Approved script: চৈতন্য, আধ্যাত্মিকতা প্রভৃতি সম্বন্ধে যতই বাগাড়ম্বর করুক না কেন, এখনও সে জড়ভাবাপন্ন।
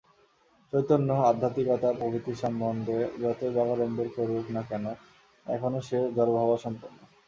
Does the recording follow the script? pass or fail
pass